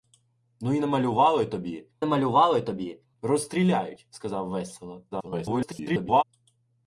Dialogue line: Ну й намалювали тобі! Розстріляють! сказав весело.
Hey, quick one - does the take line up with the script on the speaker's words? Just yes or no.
no